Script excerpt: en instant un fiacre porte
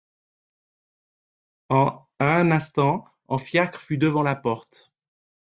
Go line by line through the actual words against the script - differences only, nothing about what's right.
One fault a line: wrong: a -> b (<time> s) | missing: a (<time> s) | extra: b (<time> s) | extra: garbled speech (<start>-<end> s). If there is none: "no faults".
extra: un (2.2 s)
extra: fut devant la (3.8 s)